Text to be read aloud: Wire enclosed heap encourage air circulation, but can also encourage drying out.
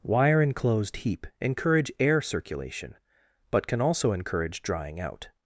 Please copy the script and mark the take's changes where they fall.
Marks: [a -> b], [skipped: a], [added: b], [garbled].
Wire enclosed heap encourage air circulation, but can also encourage drying out.